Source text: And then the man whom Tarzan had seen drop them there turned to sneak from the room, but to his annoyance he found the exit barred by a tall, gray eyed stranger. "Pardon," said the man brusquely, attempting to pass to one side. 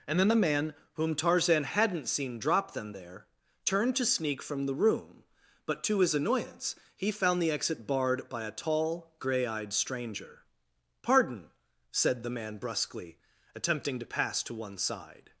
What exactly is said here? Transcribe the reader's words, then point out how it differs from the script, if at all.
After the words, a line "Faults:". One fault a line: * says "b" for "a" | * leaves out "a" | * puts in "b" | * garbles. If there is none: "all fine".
And then the man whom Tarzan hadn't seen drop them there turned to sneak from the room, but to his annoyance he found the exit barred by a tall, gray eyed stranger. "Pardon," said the man brusquely, attempting to pass to one side.
Faults:
* says "hadn't" for "had"